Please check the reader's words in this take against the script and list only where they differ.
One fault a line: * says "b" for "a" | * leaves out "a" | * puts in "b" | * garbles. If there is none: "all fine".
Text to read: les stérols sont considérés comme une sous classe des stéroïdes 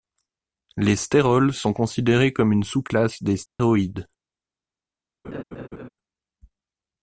all fine